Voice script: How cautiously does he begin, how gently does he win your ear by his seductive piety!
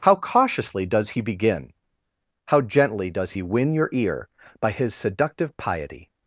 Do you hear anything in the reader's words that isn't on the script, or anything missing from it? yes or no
no